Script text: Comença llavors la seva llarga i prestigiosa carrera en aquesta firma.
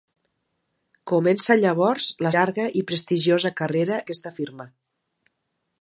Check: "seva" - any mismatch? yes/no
yes